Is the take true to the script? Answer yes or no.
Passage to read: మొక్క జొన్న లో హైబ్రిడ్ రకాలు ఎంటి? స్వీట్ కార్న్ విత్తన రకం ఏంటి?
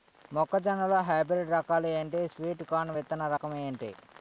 yes